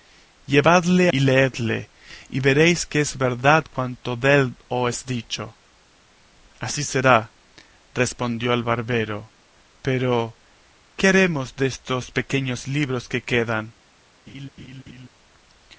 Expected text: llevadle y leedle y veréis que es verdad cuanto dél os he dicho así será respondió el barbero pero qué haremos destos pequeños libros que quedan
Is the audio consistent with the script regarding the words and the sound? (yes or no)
no